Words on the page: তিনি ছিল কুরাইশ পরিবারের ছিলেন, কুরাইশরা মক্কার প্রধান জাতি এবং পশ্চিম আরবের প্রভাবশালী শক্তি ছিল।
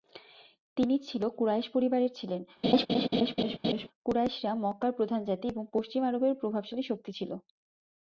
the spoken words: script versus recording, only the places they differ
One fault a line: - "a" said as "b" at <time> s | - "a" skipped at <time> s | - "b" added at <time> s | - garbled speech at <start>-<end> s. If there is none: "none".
none